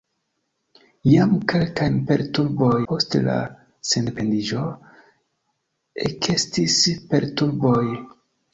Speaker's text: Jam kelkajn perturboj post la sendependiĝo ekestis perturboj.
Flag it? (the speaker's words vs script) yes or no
no